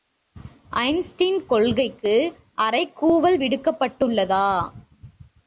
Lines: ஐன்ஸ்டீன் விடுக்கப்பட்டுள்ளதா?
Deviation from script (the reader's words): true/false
true